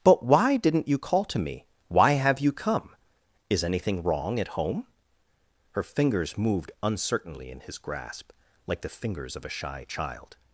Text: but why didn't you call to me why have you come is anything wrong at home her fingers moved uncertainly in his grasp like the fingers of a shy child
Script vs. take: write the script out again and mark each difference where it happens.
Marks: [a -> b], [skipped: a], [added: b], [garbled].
but why didn't you call to me why have you come is anything wrong at home her fingers moved uncertainly in his grasp like the fingers of a shy child